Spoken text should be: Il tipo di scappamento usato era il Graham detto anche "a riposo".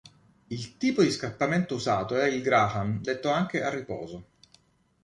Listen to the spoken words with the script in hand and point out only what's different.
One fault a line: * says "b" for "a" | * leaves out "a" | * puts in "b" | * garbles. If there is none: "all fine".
all fine